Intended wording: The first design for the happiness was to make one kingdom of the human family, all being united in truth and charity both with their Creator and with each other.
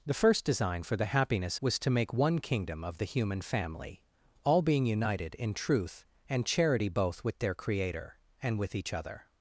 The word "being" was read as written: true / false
true